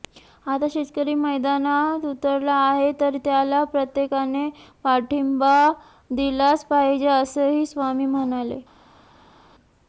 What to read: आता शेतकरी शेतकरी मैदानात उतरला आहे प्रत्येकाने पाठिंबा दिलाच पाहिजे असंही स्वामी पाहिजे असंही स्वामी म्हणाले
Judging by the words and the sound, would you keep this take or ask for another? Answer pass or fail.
fail